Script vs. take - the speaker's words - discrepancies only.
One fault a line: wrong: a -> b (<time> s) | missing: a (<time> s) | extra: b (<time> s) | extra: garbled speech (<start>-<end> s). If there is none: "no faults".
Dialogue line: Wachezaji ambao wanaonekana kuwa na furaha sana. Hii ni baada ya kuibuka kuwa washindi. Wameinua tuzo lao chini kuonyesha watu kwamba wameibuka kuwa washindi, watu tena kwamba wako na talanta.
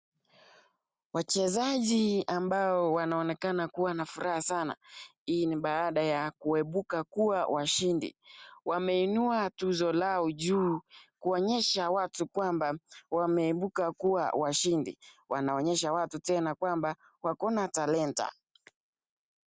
wrong: chini -> juu (10.3 s)
extra: wanaonyesha (15.3 s)